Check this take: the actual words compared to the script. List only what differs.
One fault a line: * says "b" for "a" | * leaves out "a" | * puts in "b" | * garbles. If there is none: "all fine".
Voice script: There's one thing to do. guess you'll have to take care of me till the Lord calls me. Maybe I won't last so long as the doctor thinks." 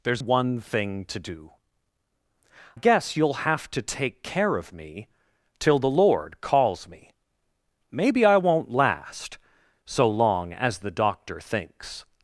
all fine